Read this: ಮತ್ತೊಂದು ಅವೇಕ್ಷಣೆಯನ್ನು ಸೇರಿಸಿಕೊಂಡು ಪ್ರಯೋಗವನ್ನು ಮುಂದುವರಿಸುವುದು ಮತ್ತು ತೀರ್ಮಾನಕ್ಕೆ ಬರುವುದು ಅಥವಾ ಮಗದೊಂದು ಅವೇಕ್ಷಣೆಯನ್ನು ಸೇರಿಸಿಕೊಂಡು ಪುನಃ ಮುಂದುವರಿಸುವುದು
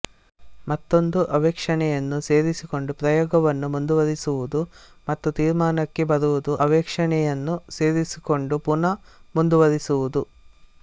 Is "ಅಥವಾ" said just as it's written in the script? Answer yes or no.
no